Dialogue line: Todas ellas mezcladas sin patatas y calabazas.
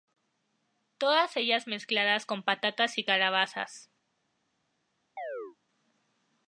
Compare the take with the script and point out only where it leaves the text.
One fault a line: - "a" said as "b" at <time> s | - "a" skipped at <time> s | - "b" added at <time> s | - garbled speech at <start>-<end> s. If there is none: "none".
- "sin" said as "con" at 2.2 s